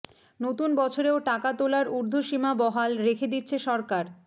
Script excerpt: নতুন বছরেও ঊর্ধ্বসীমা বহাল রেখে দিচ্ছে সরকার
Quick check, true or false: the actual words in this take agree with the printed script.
false